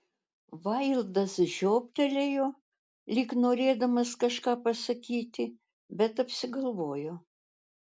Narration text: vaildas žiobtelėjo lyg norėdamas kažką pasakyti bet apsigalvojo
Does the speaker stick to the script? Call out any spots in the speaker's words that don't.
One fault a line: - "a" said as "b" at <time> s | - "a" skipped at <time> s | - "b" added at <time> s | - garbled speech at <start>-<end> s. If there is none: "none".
none